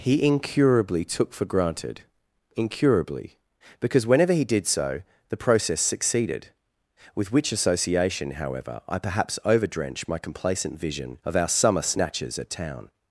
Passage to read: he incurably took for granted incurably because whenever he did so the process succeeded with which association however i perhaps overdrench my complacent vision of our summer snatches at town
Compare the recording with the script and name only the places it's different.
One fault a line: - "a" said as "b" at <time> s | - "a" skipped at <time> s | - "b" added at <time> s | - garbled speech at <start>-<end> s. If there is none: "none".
none